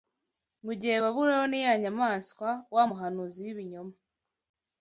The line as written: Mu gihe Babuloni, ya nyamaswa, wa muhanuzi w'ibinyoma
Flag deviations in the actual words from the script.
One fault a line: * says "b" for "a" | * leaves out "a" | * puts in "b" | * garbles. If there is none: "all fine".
all fine